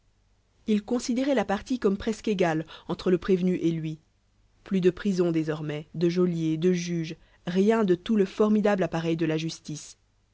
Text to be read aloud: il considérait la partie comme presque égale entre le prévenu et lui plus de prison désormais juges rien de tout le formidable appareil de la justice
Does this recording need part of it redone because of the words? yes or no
yes